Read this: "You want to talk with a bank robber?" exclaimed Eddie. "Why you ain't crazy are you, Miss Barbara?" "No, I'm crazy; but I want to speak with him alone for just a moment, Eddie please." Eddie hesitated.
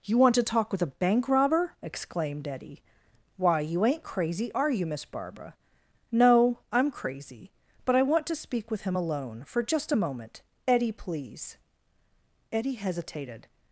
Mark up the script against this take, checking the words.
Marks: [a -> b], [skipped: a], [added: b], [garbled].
"You want to talk with a bank robber?" exclaimed Eddie. "Why you ain't crazy are you, Miss Barbara?" "No, I'm crazy; but I want to speak with him alone for just a moment, Eddie please." Eddie hesitated.